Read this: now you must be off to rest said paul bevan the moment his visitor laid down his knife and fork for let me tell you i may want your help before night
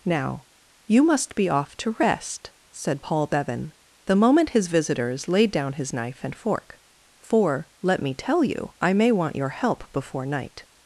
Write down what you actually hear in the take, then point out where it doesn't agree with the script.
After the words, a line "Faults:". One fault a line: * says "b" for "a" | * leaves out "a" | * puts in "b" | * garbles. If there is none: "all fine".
now you must be off to rest said paul bevan the moment his visitors laid down his knife and fork for let me tell you i may want your help before night
Faults:
* says "visitors" for "visitor"